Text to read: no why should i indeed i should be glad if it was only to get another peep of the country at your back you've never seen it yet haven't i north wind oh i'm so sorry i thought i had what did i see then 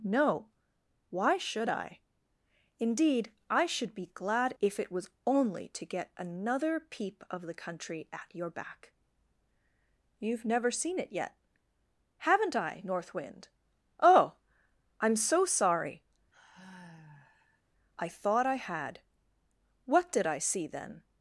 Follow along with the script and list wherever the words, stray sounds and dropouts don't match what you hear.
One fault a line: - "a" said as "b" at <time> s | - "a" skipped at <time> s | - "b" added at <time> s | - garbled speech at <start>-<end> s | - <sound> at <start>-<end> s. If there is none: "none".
- sigh at 16.3-17.6 s